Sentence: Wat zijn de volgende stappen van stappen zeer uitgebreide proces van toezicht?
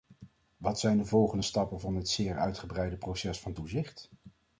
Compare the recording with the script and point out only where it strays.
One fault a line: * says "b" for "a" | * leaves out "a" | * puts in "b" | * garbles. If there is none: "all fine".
* says "dit" for "stappen"